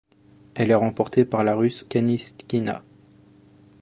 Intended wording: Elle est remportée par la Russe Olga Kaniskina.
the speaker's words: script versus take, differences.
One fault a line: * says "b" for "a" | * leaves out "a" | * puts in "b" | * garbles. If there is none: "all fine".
* leaves out "Olga"